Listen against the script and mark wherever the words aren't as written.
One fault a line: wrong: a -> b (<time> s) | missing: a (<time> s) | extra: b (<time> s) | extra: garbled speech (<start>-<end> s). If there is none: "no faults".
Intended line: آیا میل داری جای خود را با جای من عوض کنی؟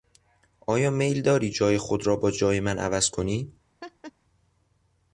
no faults